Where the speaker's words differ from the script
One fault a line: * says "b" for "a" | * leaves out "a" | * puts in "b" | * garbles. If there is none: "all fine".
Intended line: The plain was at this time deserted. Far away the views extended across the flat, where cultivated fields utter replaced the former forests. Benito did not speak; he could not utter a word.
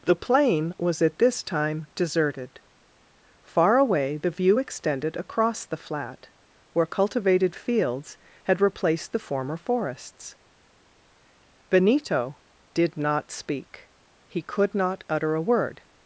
* says "view" for "views"
* says "had" for "utter"